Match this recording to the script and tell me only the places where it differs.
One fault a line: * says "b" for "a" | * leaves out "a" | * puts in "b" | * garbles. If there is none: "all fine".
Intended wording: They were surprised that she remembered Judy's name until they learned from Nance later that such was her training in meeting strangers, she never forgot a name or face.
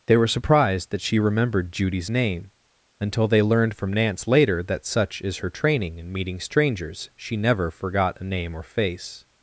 * says "is" for "was"